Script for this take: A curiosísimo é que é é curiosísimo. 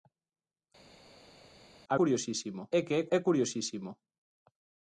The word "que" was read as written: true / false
true